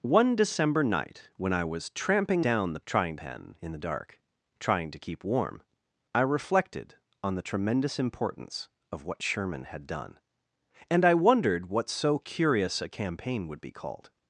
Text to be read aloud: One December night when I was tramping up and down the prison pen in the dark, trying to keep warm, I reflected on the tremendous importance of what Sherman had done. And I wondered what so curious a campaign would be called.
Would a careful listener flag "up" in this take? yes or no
yes